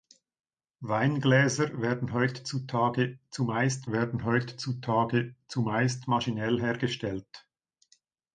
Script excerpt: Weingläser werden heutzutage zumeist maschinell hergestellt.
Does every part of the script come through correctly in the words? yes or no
no